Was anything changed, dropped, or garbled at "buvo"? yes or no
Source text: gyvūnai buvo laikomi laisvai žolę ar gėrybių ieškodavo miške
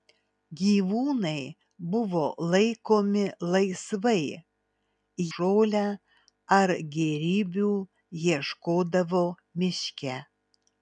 no